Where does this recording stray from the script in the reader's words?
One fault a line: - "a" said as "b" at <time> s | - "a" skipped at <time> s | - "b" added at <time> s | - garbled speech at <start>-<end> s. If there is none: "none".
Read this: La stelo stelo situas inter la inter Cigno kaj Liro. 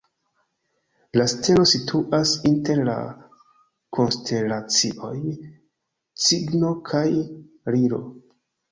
- "stelo" skipped at 1.6 s
- "inter" said as "konstelacioj" at 4.0 s